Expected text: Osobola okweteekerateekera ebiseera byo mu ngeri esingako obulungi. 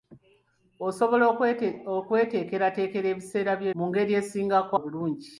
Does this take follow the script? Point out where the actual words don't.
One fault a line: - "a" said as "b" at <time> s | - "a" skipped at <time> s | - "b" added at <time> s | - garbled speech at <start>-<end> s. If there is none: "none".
none